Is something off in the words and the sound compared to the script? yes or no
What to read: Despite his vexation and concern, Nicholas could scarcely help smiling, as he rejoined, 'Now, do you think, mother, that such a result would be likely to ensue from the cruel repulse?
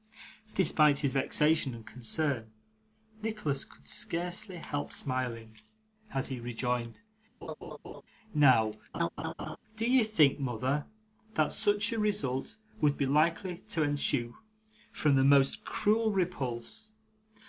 yes